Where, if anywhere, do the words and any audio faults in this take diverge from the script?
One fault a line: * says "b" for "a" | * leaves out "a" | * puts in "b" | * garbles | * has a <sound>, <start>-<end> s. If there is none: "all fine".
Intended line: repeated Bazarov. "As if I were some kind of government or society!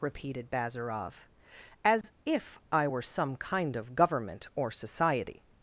* has a dropout, 2.0-2.0 s